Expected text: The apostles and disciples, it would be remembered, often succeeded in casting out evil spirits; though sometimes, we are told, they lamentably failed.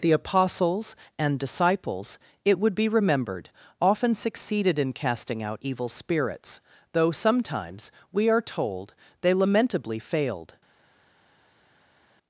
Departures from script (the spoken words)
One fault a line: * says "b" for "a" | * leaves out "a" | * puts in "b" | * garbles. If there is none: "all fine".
all fine